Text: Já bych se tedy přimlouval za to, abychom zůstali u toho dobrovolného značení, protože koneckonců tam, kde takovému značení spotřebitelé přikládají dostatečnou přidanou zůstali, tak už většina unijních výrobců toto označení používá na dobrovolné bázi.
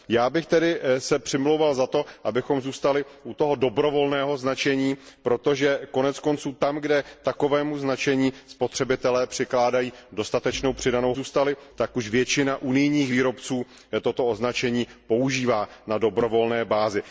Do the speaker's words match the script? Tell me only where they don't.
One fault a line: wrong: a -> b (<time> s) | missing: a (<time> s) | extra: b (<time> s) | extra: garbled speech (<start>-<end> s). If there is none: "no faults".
no faults